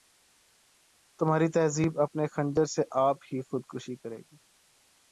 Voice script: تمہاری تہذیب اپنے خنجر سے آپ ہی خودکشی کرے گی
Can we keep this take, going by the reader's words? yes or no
yes